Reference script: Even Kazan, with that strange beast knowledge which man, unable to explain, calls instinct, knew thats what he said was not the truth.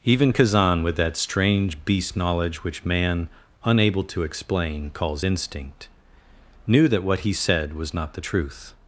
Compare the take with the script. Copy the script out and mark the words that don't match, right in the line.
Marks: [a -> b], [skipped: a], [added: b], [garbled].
Even Kazan, with that strange beast knowledge which man, unable to explain, calls instinct, knew [thats -> that] what he said was not the truth.